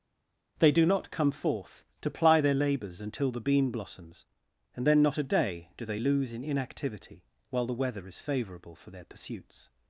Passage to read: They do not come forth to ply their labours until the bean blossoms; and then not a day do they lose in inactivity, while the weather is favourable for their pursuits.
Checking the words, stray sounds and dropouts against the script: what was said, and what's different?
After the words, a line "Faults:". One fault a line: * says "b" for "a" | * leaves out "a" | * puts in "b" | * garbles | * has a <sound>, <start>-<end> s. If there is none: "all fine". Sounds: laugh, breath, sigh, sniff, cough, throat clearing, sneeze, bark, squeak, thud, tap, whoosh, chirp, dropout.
They do not come forth to ply their labours until the bean blossoms; and then not a day do they lose in inactivity, while the weather is favourable for their pursuits.
Faults:
all fine